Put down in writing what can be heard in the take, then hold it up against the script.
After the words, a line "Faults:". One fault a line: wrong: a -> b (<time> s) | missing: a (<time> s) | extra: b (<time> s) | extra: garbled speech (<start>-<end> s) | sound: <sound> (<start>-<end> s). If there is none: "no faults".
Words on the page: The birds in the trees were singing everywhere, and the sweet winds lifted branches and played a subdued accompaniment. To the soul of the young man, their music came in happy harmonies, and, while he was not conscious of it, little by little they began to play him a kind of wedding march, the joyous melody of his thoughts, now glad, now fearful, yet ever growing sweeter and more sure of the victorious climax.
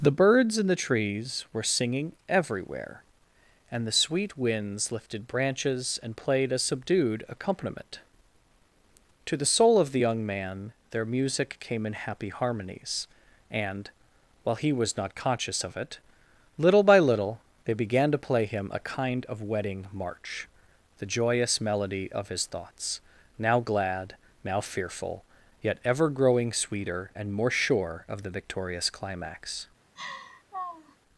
The birds in the trees were singing everywhere, and the sweet winds lifted branches and played a subdued accompaniment. To the soul of the young man, their music came in happy harmonies, and, while he was not conscious of it, little by little they began to play him a kind of wedding march, the joyous melody of his thoughts, now glad, now fearful, yet ever growing sweeter and more sure of the victorious climax.
Faults:
sound: laugh (30.0-31.0 s)